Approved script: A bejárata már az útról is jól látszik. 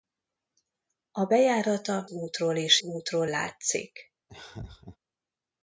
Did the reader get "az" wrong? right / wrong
wrong